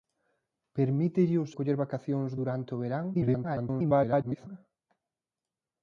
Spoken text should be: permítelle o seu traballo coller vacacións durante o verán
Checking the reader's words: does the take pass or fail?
fail